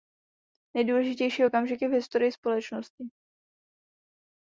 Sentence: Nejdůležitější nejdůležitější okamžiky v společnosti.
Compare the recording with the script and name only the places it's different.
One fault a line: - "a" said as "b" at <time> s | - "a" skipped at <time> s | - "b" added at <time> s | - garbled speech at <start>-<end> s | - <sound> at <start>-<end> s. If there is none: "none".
- "nejdůležitější" skipped at 1.4 s
- "historii" added at 1.9 s